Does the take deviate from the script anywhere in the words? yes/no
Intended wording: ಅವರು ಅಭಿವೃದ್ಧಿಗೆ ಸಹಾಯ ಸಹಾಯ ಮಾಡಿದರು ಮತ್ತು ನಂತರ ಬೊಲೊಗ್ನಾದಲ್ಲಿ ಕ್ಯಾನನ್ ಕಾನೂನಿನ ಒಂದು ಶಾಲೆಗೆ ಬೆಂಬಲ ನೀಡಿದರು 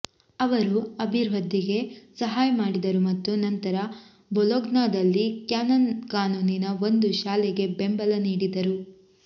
yes